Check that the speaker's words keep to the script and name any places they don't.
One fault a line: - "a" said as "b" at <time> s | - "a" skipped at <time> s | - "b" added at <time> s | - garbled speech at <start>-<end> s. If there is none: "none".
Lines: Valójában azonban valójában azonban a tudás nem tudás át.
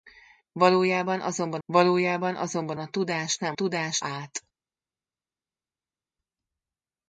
none